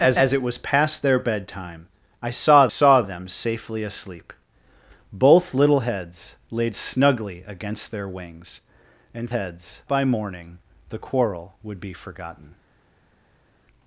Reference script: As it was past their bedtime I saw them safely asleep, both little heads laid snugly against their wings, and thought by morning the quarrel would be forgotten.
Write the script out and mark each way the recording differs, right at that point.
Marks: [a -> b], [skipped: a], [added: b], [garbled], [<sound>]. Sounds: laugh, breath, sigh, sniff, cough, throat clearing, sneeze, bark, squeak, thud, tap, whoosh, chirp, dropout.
As [added: as] it was past their bedtime I saw [added: saw] them safely asleep, both little heads laid snugly against their wings, and [thought -> heads] by morning the quarrel would be forgotten.